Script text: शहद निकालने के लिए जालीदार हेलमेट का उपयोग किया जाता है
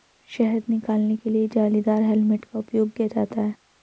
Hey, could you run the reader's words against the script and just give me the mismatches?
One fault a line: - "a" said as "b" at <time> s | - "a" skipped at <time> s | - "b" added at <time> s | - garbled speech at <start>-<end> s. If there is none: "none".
none